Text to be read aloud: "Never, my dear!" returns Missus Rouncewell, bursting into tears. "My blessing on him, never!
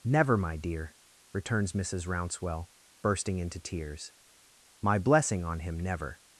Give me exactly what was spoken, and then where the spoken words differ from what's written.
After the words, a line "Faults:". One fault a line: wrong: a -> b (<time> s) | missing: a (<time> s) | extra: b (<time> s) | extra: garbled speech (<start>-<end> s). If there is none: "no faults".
"Never, my dear!" returns Missus Rouncewell, bursting into tears. "My blessing on him, never!
Faults:
no faults